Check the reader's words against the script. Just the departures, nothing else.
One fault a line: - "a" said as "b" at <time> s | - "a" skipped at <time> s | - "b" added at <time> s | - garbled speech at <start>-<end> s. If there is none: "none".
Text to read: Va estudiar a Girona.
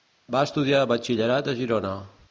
- "batxillerat" added at 0.9 s